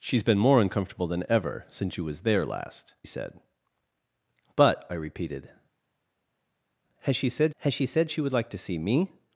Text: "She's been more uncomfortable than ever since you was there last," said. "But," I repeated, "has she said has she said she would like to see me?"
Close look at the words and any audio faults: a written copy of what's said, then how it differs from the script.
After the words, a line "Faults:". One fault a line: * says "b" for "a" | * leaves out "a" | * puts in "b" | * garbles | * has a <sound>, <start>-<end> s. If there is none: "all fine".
"She's been more uncomfortable than ever since you was there last," said. "But," I repeated, "has she said has she said she would like to see me?"
Faults:
all fine